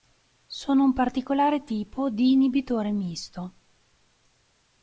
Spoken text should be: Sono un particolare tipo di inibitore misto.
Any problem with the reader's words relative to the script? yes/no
no